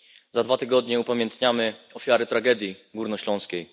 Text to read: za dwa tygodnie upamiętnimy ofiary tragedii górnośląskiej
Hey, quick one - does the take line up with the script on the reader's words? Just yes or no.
yes